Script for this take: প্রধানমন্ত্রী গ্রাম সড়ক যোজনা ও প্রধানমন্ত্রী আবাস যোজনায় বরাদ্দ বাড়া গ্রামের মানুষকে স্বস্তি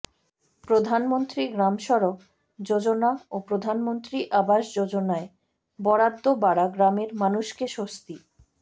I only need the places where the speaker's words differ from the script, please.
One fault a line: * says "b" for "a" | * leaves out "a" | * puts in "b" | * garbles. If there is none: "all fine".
all fine